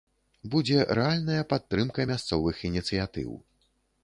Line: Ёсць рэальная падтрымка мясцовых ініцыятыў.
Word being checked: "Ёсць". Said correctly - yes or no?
no